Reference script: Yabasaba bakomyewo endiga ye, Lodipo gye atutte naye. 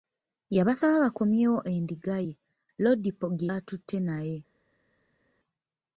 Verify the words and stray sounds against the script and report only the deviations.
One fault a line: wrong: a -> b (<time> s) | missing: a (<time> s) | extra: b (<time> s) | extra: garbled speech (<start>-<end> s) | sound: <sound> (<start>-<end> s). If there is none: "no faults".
no faults